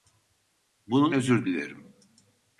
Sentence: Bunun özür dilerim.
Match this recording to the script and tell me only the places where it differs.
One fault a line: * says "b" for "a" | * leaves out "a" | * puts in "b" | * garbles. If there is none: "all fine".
all fine